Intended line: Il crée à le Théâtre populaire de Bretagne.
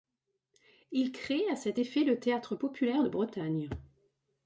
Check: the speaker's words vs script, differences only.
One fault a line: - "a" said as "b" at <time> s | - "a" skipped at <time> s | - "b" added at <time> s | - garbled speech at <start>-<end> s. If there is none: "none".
- "cet effet" added at 1.6 s